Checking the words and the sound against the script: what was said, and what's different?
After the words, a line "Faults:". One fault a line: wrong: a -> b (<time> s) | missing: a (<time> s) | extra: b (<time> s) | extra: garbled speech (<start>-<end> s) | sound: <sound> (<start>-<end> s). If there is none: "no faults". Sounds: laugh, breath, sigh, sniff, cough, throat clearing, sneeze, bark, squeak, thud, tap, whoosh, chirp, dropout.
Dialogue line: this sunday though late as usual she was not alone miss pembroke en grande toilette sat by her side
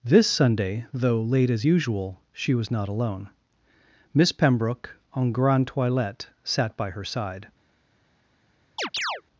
this sunday though late as usual she was not alone miss pembroke en grande toilette sat by her side
Faults:
sound: chirp (8.8-9.2 s)